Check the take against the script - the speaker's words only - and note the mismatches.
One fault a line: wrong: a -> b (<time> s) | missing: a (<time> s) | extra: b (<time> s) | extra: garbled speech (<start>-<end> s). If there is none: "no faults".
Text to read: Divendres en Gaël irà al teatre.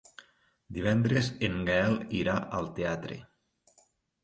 no faults